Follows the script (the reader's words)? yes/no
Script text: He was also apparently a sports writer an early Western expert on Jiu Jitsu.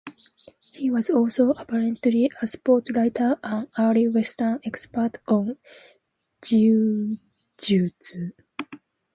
yes